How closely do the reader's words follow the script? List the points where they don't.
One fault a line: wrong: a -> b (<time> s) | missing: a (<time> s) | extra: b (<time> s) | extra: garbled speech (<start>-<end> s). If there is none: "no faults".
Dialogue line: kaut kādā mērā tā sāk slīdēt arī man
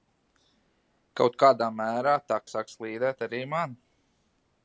no faults